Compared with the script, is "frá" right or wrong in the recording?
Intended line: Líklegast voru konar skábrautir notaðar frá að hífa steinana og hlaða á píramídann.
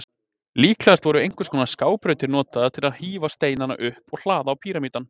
wrong